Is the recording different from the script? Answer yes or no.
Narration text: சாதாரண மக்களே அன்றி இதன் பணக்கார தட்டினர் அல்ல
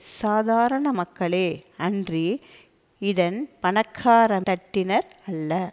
no